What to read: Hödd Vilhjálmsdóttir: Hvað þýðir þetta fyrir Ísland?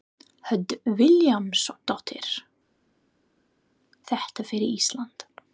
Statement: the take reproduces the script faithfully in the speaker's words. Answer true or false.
false